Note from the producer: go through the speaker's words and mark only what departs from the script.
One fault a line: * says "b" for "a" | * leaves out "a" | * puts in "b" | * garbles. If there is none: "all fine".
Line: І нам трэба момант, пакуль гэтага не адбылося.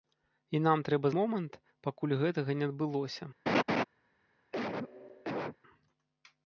all fine